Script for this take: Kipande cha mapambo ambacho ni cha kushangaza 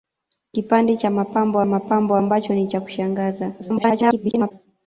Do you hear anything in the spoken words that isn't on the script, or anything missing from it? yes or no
yes